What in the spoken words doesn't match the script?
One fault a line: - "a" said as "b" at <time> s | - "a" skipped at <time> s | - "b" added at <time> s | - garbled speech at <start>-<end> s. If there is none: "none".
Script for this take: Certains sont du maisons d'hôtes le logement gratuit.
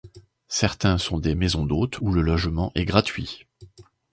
- "du" said as "des" at 1.2 s
- "où" added at 2.0 s
- "est" added at 2.7 s